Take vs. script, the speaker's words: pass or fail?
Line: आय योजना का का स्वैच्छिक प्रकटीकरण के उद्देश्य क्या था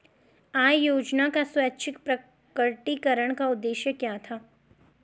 fail